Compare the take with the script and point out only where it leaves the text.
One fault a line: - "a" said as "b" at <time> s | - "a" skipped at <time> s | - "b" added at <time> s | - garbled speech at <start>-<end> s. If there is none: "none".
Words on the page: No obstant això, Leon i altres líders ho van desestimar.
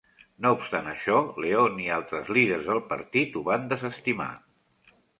- "del partit" added at 2.7 s